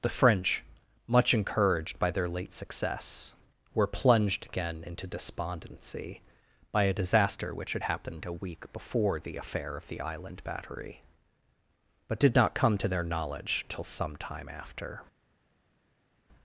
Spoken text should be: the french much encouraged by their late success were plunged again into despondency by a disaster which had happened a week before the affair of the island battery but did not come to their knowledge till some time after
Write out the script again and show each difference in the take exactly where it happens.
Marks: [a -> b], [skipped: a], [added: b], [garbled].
the french much encouraged by their late success were plunged again into despondency by a disaster which had happened a week before the affair of the island battery but did not come to their knowledge till some time after